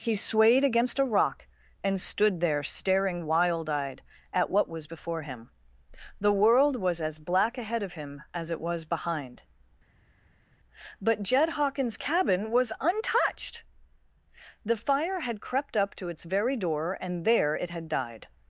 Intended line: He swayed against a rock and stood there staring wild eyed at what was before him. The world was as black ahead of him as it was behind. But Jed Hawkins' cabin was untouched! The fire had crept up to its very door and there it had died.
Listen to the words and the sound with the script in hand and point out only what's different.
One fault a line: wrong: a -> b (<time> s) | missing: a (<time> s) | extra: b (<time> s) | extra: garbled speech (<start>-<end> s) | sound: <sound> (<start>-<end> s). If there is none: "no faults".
no faults